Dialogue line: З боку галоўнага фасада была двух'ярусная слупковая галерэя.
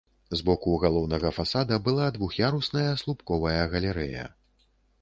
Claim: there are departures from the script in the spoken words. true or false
false